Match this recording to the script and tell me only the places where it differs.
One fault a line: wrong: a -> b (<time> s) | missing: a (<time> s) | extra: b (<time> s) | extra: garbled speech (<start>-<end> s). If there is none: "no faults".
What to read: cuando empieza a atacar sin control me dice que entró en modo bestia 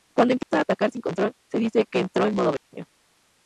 wrong: me -> se (1.5 s)